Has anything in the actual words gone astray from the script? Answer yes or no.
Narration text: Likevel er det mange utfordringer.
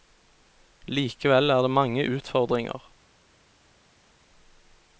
no